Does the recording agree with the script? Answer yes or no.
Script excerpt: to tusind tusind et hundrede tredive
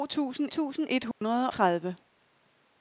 yes